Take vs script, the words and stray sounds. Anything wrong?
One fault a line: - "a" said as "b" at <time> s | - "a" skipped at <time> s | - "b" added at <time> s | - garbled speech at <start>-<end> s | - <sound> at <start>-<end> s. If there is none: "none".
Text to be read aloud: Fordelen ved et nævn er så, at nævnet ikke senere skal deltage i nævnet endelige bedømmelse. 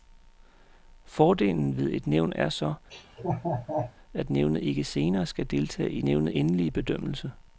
- laugh at 2.9-3.9 s